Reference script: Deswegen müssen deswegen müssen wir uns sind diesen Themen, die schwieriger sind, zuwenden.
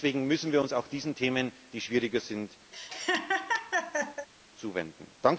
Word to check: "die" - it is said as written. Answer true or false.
true